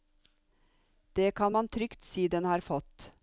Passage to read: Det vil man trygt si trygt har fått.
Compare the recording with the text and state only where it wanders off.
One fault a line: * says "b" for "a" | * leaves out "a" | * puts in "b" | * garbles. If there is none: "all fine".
* says "kan" for "vil"
* says "den" for "trygt"